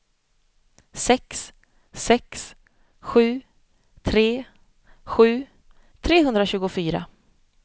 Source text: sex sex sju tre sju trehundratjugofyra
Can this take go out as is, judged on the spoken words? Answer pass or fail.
pass